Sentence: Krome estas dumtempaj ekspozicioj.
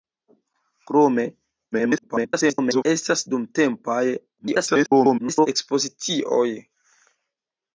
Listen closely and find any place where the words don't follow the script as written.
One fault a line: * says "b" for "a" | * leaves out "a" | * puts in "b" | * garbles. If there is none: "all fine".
* garbles
* garbles